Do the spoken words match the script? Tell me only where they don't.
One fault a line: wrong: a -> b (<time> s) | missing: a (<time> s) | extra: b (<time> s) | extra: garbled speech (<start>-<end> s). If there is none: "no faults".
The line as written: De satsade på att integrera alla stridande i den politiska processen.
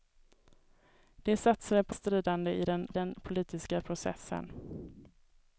missing: att integrera alla (1.9 s)
extra: den (2.9 s)